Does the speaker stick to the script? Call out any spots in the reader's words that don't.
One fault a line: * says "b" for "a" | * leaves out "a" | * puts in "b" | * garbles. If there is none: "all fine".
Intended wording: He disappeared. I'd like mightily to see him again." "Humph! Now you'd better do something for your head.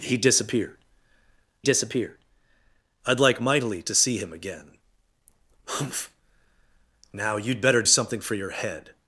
* puts in "disappeared"
* leaves out "do"